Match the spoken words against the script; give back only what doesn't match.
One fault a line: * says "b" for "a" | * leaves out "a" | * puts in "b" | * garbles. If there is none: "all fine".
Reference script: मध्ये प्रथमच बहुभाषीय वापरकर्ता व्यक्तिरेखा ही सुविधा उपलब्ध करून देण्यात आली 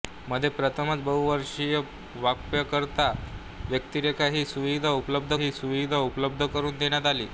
* puts in "ही सुविधा उपलब्ध"